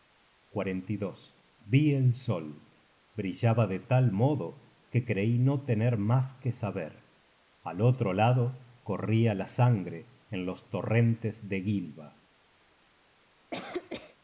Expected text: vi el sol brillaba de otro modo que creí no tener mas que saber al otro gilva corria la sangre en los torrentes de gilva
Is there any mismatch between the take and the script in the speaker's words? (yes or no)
yes